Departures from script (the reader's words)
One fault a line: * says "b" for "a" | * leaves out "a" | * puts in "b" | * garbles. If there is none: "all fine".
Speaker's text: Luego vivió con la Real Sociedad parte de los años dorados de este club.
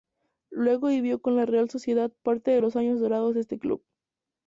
all fine